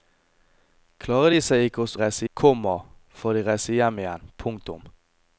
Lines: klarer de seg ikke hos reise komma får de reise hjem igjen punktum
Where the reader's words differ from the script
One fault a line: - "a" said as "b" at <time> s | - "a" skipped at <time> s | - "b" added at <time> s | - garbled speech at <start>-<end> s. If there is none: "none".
none